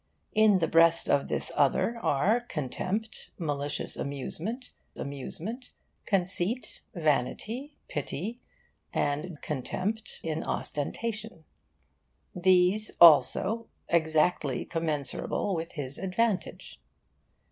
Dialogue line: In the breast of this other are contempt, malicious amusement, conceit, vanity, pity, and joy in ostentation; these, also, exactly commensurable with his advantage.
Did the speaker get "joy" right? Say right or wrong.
wrong